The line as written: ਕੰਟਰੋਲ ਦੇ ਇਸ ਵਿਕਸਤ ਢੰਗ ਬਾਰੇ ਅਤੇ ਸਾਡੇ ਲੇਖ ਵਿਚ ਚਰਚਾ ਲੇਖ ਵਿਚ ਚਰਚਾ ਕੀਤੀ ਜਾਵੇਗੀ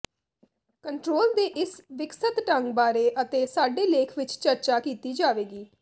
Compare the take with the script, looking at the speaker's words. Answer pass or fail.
fail